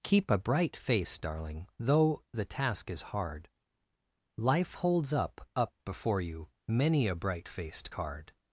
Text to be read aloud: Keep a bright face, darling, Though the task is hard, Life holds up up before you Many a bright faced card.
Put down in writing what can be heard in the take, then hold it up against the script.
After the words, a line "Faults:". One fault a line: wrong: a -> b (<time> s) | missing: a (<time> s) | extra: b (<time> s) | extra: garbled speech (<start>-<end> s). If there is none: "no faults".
Keep a bright face, darling, Though the task is hard, Life holds up up before you Many a bright faced card.
Faults:
no faults